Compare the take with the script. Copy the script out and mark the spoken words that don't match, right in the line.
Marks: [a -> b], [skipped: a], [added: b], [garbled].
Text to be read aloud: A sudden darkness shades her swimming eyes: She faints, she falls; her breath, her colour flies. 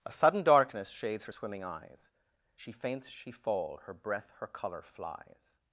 A sudden darkness shades her swimming eyes: She faints, she [falls; -> fall] her breath, her colour flies.